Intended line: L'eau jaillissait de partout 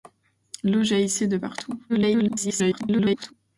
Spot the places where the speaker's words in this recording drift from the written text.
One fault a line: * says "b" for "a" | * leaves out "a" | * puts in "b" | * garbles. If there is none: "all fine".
* garbles